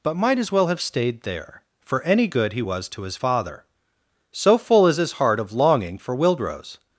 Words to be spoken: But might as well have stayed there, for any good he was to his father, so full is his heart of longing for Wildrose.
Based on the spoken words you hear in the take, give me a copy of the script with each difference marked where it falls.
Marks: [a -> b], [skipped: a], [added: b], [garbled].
But might as well have stayed there, for any good he was to his father, so full is his heart of longing for Wildrose.